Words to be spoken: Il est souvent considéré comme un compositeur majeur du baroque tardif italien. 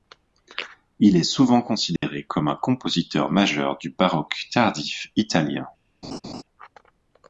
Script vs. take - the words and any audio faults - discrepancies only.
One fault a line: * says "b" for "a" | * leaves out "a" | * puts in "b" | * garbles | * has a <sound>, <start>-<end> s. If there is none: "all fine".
* has a dropout, 2.0-2.0 s
* has a laugh, 6.0-6.4 s